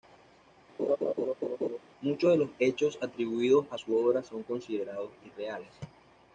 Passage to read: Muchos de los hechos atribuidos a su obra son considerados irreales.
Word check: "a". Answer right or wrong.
right